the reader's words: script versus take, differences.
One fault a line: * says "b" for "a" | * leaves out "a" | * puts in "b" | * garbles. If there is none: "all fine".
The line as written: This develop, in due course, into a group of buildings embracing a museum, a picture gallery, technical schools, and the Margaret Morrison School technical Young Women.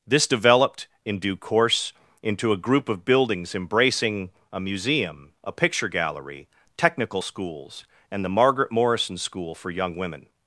* says "developed" for "develop"
* says "for" for "technical"